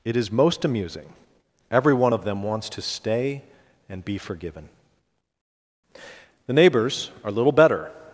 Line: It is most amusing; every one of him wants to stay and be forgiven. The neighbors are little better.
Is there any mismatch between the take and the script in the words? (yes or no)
yes